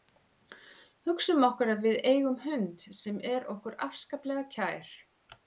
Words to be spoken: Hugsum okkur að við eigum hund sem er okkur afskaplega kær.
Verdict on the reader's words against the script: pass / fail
pass